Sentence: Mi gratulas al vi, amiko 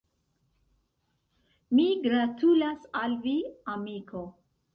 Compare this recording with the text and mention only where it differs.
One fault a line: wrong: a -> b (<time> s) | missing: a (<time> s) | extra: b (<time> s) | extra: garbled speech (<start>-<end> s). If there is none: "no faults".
no faults